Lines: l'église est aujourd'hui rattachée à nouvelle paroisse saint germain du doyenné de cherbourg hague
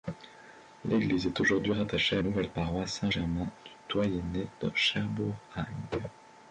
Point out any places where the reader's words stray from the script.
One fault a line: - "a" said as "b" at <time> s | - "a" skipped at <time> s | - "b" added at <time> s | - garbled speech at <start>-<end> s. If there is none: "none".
none